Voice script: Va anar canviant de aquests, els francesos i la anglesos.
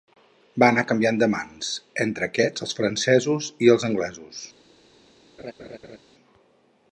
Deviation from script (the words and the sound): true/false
true